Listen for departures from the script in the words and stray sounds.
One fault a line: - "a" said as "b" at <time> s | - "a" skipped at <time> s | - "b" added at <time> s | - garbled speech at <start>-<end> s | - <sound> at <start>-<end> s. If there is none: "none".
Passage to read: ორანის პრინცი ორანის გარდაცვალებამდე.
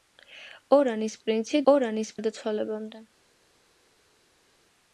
none